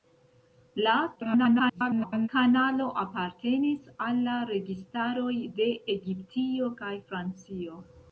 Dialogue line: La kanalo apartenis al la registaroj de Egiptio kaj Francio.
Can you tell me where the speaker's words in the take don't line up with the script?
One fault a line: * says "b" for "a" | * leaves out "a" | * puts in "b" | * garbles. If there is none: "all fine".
* garbles